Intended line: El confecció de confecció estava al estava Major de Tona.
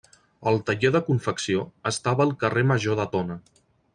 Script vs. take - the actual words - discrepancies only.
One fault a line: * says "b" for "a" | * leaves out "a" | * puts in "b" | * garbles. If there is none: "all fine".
* says "taller" for "confecció"
* says "carrer" for "estava"